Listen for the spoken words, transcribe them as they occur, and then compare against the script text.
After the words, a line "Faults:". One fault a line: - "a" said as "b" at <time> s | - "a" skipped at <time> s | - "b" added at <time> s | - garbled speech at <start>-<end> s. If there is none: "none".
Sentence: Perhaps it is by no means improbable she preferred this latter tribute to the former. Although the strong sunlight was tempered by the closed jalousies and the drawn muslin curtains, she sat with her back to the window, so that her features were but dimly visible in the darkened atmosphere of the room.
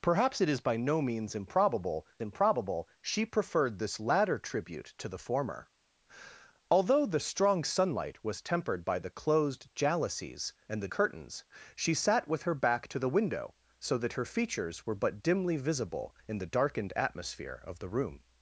Perhaps it is by no means improbable improbable she preferred this latter tribute to the former. Although the strong sunlight was tempered by the closed jalousies and the curtains, she sat with her back to the window, so that her features were but dimly visible in the darkened atmosphere of the room.
Faults:
- "improbable" added at 2.2 s
- "drawn muslin" skipped at 10.9 s